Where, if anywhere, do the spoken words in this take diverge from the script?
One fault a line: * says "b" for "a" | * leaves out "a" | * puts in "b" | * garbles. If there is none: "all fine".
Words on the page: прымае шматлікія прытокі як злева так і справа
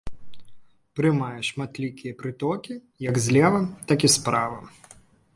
all fine